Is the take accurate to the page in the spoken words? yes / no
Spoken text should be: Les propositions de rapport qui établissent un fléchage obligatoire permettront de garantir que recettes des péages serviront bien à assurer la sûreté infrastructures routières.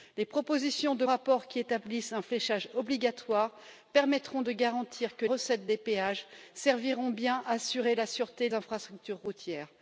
yes